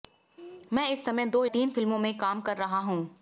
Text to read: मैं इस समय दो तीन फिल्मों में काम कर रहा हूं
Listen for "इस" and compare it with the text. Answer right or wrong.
right